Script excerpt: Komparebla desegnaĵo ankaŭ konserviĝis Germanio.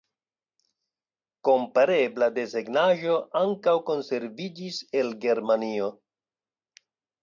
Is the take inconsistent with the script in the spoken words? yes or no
yes